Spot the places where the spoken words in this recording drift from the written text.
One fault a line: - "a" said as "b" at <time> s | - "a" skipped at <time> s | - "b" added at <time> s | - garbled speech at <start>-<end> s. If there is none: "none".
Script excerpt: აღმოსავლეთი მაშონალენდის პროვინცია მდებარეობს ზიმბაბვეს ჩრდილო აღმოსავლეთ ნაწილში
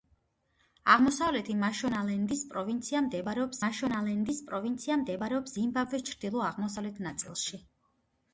- "მაშონალენდის პროვინცია მდებარეობს" added at 3.6 s